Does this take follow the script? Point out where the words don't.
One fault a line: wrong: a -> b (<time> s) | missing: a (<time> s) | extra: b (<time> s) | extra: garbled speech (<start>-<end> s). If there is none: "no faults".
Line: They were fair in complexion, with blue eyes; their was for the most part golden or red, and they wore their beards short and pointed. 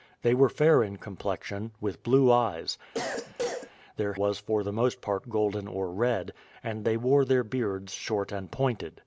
no faults